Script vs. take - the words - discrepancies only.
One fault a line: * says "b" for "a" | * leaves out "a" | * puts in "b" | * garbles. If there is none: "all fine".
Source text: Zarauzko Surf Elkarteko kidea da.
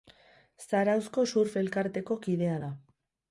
all fine